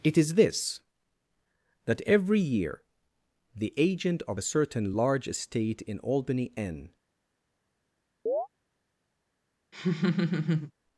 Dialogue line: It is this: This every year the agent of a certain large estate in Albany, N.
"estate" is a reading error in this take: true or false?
false